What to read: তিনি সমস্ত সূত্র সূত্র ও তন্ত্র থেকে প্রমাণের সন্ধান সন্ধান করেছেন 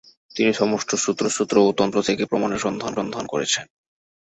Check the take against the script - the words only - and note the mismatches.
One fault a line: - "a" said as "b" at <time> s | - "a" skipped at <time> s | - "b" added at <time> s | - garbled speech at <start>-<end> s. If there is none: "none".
none